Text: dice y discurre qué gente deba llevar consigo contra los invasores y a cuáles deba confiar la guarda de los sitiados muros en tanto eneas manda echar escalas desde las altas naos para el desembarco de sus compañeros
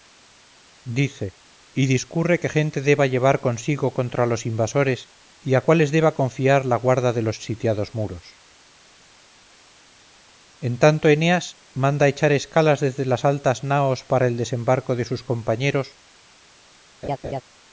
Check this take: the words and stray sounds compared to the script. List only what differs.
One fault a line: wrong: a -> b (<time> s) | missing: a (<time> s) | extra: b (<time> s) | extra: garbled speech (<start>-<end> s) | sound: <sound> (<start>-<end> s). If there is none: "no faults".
sound: laugh (17.0-17.4 s)